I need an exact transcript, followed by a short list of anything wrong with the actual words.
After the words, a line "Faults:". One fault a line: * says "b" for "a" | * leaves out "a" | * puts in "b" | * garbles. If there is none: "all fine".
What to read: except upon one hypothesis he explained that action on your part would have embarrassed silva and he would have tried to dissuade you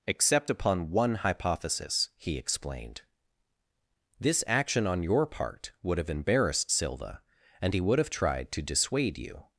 except upon one hypothesis he explained this action on your part would have embarrassed silva and he would have tried to dissuade you
Faults:
* says "this" for "that"